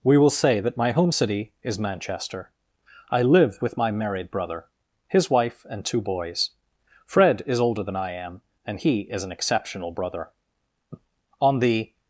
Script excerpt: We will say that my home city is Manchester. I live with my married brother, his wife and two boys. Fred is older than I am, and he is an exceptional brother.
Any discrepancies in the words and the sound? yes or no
yes